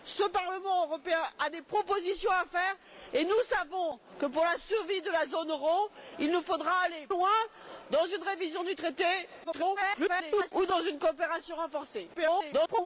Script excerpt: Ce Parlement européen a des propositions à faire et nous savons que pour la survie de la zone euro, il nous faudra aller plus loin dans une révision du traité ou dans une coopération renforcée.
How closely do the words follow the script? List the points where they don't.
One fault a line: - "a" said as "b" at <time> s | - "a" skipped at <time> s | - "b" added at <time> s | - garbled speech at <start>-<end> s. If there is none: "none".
- "plus" skipped at 7.1 s
- garbled speech at 9.4-10.5 s
- garbled speech at 12.1-12.9 s